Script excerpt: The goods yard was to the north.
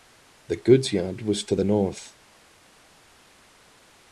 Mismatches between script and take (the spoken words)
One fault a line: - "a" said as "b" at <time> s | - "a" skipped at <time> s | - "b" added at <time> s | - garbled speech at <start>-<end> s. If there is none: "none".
none